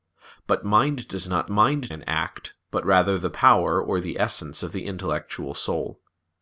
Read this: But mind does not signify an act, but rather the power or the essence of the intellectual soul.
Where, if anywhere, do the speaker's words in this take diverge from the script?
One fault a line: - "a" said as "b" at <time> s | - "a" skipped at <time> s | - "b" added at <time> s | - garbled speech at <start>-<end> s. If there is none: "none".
- "signify" said as "mind" at 1.5 s